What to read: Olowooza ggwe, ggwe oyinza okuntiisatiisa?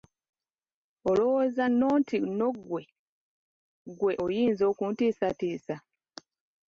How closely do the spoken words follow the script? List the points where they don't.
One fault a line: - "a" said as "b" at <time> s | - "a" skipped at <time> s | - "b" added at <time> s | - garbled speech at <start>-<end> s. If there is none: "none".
- "nno nti nno" added at 1.7 s